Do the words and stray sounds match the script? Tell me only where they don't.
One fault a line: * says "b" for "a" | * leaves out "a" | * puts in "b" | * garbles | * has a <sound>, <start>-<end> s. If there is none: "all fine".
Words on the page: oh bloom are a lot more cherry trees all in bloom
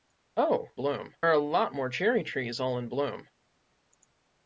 all fine